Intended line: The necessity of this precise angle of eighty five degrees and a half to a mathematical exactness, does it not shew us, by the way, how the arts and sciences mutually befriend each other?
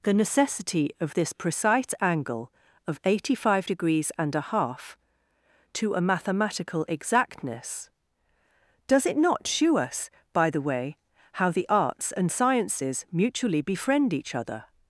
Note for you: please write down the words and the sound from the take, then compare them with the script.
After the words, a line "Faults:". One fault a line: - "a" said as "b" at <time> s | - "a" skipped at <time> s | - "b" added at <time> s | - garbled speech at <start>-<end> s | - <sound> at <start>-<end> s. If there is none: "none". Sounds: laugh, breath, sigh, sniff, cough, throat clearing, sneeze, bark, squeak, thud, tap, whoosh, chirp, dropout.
The necessity of this precise angle of eighty five degrees and a half to a mathematical exactness, does it not shew us, by the way, how the arts and sciences mutually befriend each other?
Faults:
none